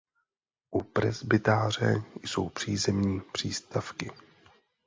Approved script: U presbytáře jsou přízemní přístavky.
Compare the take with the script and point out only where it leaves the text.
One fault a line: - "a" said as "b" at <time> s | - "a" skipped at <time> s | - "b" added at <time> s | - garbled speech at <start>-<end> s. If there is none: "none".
none